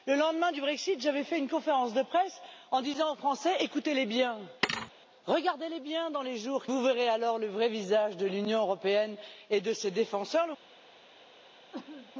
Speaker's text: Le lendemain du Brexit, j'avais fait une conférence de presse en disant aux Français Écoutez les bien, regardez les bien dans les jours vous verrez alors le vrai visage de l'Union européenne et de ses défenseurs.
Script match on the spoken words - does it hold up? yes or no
yes